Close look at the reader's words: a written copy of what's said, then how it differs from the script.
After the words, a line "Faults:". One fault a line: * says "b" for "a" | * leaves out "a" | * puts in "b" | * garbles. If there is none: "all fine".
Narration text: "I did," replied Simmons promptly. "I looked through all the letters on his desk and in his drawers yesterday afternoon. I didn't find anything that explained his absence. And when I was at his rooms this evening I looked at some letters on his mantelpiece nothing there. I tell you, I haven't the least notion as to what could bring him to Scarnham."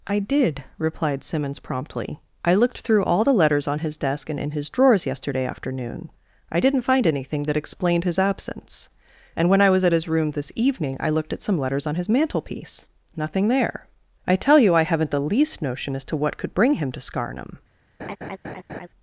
"I did," replied Simmons promptly. "I looked through all the letters on his desk and in his drawers yesterday afternoon. I didn't find anything that explained his absence. And when I was at his room this evening I looked at some letters on his mantelpiece nothing there. I tell you, I haven't the least notion as to what could bring him to Scarnham."
Faults:
* says "room" for "rooms"